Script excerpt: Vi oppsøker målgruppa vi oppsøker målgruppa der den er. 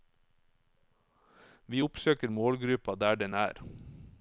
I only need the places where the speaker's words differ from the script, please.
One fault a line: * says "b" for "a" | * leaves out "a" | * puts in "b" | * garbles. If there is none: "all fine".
* leaves out "vi oppsøker målgruppa"